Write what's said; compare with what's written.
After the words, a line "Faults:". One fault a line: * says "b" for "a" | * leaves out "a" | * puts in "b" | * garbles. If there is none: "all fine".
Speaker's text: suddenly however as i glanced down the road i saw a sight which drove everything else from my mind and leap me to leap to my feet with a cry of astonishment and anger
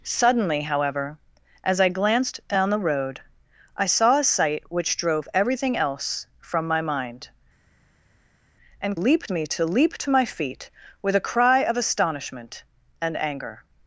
suddenly however as i glanced down the road i saw a sight which drove everything else from my mind and leap me to leap to my feet with a cry of astonishment and anger
Faults:
all fine